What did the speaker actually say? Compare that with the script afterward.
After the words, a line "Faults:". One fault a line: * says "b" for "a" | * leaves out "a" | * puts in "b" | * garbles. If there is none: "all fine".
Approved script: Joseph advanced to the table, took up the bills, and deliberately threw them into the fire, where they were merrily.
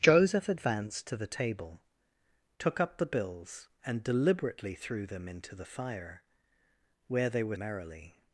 Joseph advanced to the table, took up the bills, and deliberately threw them into the fire, where they were merrily.
Faults:
all fine